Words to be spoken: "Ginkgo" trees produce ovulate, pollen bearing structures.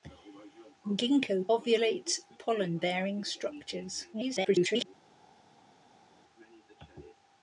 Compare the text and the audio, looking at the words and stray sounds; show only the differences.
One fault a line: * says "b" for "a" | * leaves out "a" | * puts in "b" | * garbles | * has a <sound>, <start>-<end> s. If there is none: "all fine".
* leaves out "trees produce"
* garbles